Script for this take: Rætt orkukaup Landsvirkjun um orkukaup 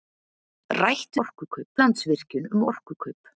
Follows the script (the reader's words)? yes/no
yes